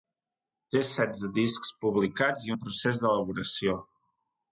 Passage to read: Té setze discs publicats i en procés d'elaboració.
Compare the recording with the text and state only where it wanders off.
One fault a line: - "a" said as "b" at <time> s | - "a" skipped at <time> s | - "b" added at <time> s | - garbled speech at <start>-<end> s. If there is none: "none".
none